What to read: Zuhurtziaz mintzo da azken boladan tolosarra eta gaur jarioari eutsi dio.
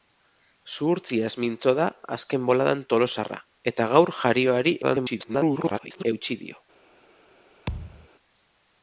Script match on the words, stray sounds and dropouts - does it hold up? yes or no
no